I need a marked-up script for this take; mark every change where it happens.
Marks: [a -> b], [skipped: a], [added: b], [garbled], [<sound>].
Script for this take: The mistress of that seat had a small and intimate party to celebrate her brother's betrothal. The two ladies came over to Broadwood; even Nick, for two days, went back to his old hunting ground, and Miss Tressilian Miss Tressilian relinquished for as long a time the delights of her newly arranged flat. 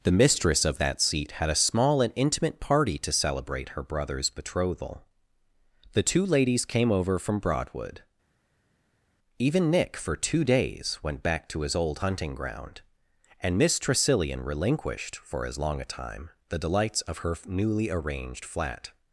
The mistress of that seat had a small and intimate party to celebrate her brother's betrothal. The two ladies came over [to -> from] Broadwood; even Nick, for two days, went back to his old hunting ground, and Miss Tressilian [skipped: Miss Tressilian] relinquished for as long a time the delights of her newly arranged flat.